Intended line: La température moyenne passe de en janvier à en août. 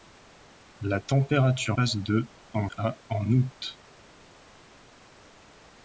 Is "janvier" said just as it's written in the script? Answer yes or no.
no